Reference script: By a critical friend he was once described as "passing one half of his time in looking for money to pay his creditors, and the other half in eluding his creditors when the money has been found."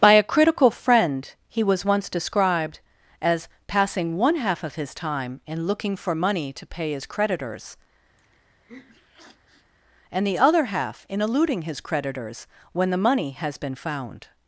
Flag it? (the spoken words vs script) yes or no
no